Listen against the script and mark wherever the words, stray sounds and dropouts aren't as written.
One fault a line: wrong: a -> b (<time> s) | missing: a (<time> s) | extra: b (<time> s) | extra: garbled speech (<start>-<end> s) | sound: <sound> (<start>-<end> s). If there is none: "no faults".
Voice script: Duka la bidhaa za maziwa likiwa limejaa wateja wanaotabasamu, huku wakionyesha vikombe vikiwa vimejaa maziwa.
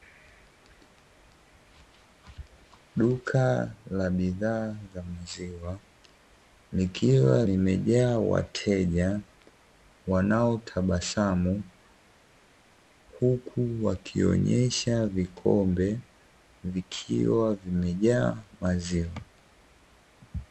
no faults